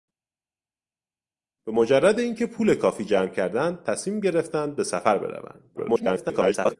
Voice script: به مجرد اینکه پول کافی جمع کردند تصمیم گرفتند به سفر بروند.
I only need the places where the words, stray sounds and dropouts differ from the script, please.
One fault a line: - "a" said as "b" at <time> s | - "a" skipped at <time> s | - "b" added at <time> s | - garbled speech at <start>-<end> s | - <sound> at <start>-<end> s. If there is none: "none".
- garbled speech at 5.8-6.8 s